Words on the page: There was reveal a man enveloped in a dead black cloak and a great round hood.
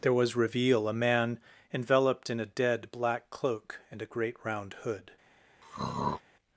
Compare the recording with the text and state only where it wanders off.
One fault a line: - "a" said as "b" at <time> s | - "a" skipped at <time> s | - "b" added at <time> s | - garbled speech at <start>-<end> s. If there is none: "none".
none